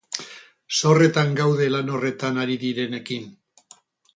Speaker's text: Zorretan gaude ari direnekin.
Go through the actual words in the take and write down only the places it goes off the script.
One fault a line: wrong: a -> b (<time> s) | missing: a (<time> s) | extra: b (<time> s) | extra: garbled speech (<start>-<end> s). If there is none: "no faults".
extra: lan horretan (1.8 s)